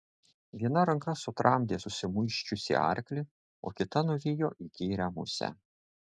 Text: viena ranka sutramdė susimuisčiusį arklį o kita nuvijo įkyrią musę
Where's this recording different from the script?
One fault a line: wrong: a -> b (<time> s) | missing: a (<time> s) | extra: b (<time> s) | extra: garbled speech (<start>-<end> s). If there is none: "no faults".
no faults